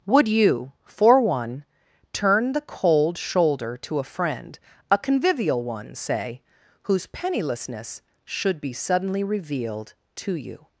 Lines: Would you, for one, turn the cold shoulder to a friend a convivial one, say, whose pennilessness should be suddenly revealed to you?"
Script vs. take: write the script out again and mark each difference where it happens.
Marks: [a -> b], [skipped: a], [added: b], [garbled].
Would you, for one, turn the cold shoulder to a friend a convivial one, say, whose pennilessness should be suddenly revealed to you?"